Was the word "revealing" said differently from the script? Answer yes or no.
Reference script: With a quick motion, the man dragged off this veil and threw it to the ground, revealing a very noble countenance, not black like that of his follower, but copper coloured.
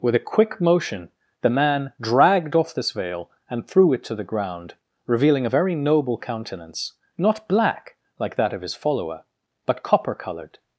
no